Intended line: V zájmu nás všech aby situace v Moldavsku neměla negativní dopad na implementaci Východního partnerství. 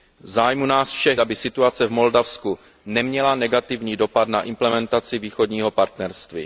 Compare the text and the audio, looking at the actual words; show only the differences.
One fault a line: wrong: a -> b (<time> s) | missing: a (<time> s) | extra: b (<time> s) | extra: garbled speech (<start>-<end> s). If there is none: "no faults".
no faults